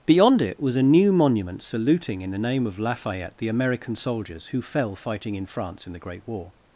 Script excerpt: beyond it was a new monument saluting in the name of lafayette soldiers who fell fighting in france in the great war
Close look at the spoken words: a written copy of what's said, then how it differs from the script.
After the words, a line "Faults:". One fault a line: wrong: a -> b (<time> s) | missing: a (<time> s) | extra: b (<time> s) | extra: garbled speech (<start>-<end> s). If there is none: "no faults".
beyond it was a new monument saluting in the name of lafayette the american soldiers who fell fighting in france in the great war
Faults:
extra: the american (3.4 s)